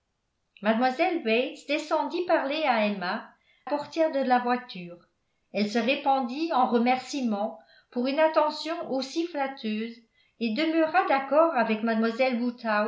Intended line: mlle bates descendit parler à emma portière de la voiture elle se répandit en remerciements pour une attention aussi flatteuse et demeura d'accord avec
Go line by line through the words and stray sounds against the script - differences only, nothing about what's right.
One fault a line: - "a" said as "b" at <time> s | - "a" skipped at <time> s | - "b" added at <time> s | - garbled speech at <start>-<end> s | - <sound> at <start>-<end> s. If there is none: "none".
none